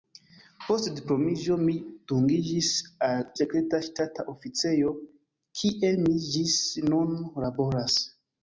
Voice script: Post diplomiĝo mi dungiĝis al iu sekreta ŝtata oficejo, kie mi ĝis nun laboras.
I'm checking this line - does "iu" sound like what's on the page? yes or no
no